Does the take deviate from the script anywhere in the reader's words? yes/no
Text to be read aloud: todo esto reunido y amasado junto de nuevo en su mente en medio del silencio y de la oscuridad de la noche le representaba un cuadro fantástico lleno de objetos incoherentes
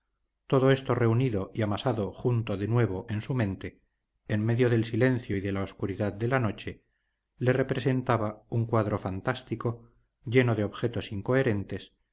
no